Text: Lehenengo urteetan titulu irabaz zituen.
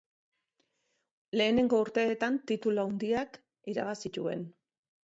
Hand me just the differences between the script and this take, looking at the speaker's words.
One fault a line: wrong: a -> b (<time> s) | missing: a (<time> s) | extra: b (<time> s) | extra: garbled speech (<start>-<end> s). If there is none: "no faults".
extra: handiak (2.9 s)